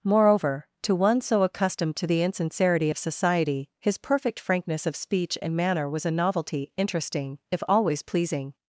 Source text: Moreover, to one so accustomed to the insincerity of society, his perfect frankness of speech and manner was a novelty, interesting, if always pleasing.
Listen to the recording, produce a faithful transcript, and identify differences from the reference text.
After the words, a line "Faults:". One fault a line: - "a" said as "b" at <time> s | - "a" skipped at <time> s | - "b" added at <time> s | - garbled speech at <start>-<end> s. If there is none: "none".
Moreover, to one so accustomed to the insincerity of society, his perfect frankness of speech and manner was a novelty, interesting, if always pleasing.
Faults:
none